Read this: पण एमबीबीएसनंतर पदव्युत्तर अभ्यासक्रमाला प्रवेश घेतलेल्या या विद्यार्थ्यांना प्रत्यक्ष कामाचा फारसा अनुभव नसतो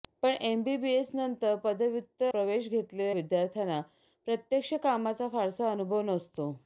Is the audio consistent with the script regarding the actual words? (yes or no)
no